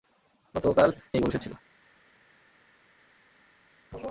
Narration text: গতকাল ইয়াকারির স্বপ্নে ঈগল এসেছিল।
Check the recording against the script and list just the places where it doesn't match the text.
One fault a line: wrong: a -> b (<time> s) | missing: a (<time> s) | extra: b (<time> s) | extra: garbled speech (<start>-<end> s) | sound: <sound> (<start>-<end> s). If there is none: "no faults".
missing: ইয়াকারির স্বপ্নে (0.9 s)